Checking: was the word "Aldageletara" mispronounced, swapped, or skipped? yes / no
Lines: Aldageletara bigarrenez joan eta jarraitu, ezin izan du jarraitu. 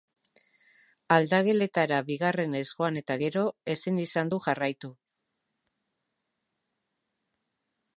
no